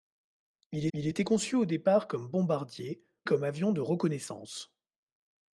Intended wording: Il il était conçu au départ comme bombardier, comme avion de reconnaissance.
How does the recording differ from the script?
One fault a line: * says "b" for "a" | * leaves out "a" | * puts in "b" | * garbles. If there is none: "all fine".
all fine